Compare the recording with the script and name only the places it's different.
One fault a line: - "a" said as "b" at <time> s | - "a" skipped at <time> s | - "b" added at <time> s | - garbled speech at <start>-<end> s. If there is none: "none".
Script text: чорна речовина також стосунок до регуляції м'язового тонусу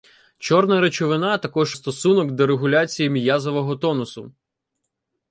none